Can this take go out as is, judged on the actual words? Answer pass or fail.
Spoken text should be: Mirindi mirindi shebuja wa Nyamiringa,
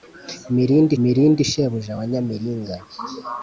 pass